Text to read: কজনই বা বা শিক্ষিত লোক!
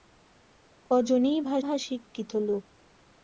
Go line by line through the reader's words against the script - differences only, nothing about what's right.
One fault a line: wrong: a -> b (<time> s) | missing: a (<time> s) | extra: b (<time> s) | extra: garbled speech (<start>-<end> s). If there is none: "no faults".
no faults